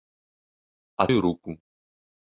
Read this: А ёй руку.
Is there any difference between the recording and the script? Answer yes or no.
no